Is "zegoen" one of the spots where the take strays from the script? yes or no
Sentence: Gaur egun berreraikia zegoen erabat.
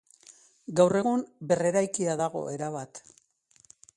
yes